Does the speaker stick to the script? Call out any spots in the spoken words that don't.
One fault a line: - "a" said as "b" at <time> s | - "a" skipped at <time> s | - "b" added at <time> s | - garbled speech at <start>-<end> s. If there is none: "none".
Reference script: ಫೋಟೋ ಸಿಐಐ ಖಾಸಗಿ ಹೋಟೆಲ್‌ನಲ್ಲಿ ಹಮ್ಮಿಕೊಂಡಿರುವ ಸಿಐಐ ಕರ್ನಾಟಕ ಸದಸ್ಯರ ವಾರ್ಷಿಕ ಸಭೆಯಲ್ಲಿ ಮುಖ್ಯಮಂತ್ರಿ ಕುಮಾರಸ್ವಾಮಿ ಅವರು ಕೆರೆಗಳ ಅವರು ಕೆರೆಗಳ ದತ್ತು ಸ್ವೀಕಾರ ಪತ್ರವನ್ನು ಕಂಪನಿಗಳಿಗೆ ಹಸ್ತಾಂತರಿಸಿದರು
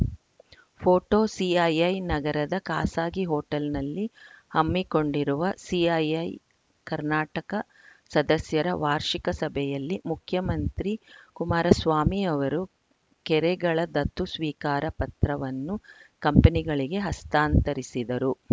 - "ನಗರದ" added at 2.0 s
- "ಅವರು ಕೆರೆಗಳ" skipped at 13.8 s